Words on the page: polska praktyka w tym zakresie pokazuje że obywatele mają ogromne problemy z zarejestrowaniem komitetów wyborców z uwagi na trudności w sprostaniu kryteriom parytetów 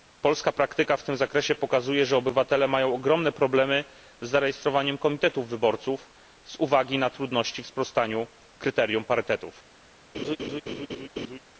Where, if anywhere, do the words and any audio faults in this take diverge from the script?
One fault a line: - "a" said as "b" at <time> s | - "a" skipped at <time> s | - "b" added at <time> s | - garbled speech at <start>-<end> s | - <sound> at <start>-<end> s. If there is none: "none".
- laugh at 10.1-11.4 s